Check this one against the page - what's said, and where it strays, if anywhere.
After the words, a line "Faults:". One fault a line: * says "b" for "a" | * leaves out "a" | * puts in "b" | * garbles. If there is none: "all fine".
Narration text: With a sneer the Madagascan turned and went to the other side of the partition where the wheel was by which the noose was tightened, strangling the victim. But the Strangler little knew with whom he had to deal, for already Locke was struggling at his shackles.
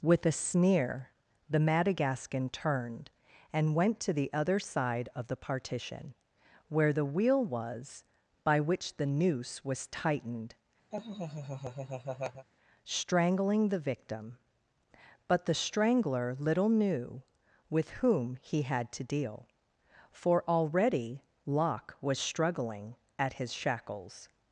With a sneer the Madagascan turned and went to the other side of the partition where the wheel was by which the noose was tightened, strangling the victim. But the Strangler little knew with whom he had to deal, for already Locke was struggling at his shackles.
Faults:
all fine